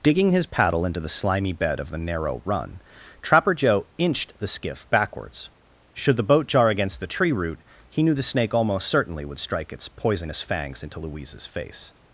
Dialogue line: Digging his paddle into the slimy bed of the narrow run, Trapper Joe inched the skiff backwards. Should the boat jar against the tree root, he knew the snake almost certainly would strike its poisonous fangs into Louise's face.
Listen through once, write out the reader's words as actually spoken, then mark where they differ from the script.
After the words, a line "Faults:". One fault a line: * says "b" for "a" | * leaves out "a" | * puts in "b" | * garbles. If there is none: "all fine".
Digging his paddle into the slimy bed of the narrow run, Trapper Joe inched the skiff backwards. Should the boat jar against the tree root, he knew the snake almost certainly would strike its poisonous fangs into Louise's face.
Faults:
all fine